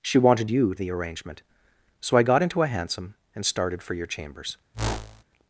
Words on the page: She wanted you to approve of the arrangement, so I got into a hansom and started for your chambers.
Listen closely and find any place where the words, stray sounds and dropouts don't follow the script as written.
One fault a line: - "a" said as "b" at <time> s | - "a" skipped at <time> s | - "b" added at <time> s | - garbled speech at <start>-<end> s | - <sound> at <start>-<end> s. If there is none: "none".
- "to approve of" skipped at 0.7 s
- whoosh at 4.7-5.2 s